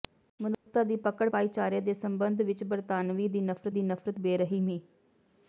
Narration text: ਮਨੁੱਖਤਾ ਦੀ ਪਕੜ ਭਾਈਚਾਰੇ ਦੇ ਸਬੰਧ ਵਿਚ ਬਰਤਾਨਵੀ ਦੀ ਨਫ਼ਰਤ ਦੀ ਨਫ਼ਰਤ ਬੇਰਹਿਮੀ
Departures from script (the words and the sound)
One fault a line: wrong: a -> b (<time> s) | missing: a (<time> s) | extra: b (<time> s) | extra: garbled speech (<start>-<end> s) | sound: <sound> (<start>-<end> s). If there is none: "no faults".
sound: dropout (0.5-0.7 s)